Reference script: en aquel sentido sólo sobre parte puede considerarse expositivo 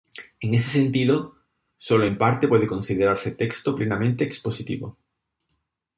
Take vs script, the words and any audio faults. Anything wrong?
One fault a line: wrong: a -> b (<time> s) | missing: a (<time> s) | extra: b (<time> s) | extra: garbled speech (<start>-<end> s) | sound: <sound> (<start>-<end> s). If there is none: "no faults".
wrong: aquel -> ese (0.6 s)
wrong: sobre -> en (2.0 s)
extra: texto plenamente (3.3 s)